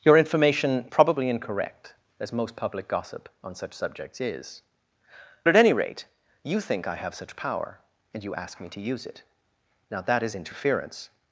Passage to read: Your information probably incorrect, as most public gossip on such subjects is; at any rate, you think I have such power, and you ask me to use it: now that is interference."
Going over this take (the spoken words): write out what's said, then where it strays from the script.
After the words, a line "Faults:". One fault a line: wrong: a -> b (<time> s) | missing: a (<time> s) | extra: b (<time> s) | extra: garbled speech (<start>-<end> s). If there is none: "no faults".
Your information probably incorrect, as most public gossip on such subjects is; at any rate, you think I have such power, and you ask me to use it: now that is interference."
Faults:
no faults